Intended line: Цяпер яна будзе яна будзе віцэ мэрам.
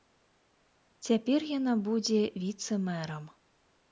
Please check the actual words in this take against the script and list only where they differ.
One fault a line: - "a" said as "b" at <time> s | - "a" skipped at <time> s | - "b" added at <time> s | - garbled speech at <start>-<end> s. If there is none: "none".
- "яна будзе" skipped at 2.2 s